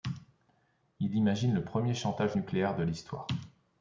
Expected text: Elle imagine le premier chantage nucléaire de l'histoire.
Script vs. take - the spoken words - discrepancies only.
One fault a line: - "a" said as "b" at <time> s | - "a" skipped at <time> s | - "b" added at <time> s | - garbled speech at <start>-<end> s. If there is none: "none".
- "Elle" said as "Il" at 1.0 s